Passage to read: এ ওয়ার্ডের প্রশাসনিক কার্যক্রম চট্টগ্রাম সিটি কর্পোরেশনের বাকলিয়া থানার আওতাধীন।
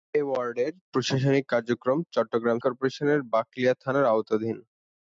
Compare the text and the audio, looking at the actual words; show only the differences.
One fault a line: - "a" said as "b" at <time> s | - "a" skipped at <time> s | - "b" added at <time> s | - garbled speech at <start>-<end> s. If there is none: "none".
- "সিটি" skipped at 2.6 s